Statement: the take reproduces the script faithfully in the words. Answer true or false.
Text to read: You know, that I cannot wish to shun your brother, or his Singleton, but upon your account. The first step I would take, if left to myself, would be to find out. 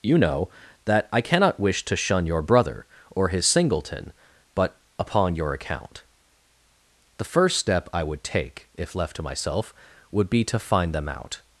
false